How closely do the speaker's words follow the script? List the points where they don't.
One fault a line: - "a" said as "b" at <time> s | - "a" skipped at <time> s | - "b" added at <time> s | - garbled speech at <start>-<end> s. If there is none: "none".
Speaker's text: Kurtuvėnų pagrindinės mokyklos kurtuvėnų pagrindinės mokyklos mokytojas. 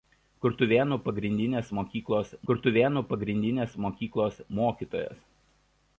none